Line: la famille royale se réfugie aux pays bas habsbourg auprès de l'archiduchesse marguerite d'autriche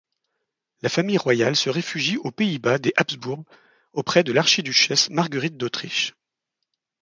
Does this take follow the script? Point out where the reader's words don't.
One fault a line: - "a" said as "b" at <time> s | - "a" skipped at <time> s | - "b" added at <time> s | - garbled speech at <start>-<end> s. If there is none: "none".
- "des" added at 2.8 s